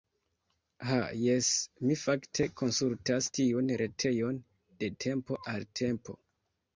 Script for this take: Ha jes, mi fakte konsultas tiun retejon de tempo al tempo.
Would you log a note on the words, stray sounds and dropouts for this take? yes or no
no